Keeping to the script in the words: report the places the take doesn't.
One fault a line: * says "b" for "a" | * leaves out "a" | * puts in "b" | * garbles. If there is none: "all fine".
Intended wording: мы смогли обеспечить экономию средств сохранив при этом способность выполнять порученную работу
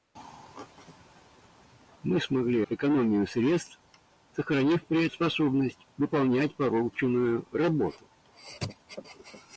* leaves out "обеспечить"
* leaves out "этом"